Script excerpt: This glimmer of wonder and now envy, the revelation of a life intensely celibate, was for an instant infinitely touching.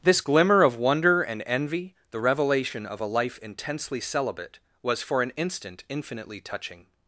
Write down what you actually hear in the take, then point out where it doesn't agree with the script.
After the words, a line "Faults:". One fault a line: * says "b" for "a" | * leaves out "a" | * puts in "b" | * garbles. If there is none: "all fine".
This glimmer of wonder and envy, the revelation of a life intensely celibate, was for an instant infinitely touching.
Faults:
* leaves out "now"